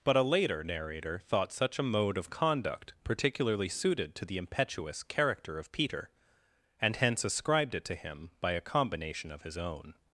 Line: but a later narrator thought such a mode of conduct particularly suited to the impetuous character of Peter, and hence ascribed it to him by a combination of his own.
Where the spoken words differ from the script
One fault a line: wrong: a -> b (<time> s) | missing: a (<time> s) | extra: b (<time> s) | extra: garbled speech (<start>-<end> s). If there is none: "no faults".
no faults